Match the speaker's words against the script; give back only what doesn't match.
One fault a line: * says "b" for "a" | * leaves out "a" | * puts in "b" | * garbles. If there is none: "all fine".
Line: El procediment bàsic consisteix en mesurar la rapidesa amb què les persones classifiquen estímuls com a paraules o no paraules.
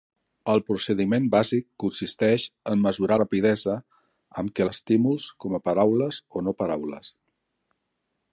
* leaves out "la"
* leaves out "les persones classifiquen"